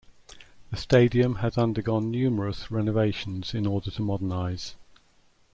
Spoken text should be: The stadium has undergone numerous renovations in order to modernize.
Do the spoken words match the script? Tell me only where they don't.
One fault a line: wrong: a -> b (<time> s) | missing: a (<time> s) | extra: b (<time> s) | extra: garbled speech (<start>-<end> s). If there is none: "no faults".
no faults